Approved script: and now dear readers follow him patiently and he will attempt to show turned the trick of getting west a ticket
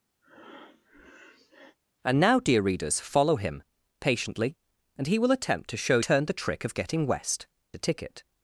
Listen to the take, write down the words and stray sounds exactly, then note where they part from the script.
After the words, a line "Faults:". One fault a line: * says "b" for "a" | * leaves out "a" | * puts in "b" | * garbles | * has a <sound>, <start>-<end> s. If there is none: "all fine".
and now dear readers follow him patiently and he will attempt to show turned the trick of getting west a ticket
Faults:
* has a breath, 0.2-1.8 s